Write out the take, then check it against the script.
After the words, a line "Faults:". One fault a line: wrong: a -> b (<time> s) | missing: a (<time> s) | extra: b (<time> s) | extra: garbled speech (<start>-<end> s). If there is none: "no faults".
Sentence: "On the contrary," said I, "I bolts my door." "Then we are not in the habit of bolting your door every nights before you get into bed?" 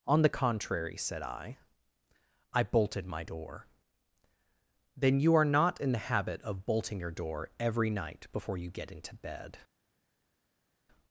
"On the contrary," said I, "I bolted my door." "Then you are not in the habit of bolting your door every night before you get into bed?"
Faults:
wrong: bolts -> bolted (2.6 s)
wrong: we -> you (5.2 s)
wrong: nights -> night (7.9 s)